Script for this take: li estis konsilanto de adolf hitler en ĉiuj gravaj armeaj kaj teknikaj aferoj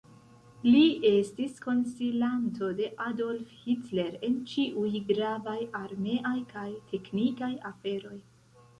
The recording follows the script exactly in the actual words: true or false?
true